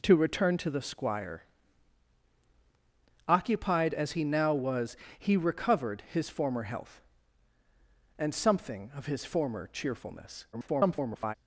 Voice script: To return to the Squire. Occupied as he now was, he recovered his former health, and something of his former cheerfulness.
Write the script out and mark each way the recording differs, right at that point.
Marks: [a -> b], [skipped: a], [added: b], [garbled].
To return to the Squire. Occupied as he now was, he recovered his former health, and something of his former cheerfulness. [garbled]